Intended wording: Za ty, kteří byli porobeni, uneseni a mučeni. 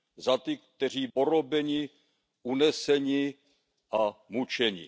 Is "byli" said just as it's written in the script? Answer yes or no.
no